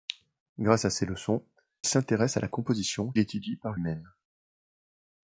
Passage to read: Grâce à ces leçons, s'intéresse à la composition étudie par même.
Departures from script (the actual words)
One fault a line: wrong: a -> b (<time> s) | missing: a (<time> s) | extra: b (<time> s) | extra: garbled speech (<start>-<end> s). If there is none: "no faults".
no faults